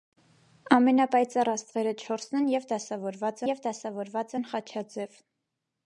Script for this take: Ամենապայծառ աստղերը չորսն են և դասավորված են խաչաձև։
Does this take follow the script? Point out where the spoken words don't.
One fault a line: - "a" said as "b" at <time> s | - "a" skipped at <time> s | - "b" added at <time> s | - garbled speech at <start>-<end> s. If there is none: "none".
- "և դասավորված" added at 3.5 s